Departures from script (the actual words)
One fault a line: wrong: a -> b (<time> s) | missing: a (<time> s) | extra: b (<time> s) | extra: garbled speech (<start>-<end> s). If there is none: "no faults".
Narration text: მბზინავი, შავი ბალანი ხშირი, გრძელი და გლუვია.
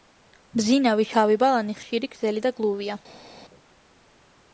no faults